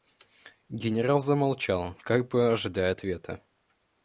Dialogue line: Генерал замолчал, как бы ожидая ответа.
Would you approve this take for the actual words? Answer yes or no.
yes